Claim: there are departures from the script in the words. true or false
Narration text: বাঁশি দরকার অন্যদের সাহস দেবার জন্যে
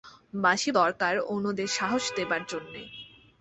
false